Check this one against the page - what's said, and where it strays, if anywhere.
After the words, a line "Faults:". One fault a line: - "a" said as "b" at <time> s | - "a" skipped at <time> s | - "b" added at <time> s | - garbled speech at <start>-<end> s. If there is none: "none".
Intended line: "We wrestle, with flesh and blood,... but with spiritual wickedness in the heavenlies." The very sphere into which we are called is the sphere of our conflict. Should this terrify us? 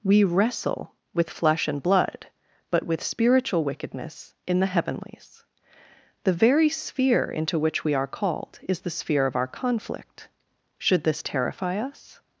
"We wrestle, with flesh and blood,... but with spiritual wickedness in the heavenlies." The very sphere into which we are called is the sphere of our conflict. Should this terrify us?
Faults:
none